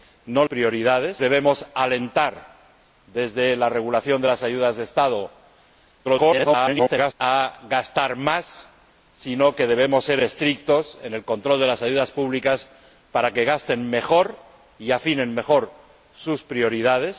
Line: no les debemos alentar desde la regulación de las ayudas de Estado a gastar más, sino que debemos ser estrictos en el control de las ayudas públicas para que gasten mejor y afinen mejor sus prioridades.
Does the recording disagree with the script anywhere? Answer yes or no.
yes